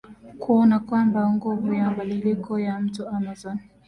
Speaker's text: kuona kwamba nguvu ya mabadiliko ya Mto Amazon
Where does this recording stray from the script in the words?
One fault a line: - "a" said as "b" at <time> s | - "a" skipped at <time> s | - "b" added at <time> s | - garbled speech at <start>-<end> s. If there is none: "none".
none